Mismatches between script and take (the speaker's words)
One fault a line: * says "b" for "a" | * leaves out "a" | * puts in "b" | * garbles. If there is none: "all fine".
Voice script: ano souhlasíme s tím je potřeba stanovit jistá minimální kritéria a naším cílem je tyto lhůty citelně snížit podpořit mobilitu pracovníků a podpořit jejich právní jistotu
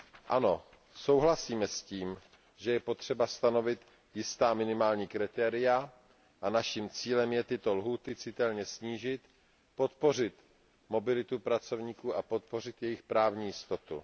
* puts in "že"